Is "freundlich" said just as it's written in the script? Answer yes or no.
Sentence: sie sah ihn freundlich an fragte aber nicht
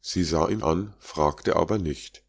no